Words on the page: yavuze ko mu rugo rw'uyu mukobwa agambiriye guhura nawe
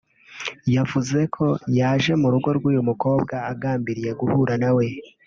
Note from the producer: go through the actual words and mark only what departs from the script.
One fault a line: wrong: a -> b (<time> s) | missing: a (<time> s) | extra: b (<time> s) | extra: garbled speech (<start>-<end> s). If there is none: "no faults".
extra: yaje (1.8 s)